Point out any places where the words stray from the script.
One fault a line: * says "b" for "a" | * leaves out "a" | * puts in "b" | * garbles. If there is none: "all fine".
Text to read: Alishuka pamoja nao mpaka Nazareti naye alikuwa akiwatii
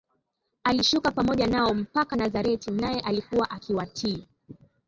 all fine